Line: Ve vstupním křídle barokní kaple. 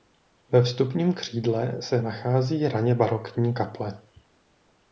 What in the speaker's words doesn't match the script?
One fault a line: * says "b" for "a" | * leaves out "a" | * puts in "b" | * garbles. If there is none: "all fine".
* puts in "se nachází raně"